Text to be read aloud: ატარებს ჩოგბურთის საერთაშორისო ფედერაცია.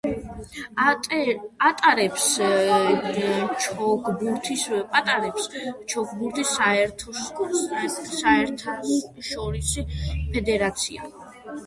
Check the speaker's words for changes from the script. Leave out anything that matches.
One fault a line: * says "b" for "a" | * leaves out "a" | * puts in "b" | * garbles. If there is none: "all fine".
all fine